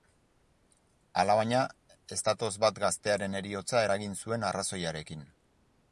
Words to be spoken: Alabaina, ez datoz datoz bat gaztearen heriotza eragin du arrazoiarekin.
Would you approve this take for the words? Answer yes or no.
no